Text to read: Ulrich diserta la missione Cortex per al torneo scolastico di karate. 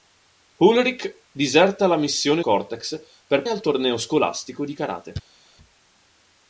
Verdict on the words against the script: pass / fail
pass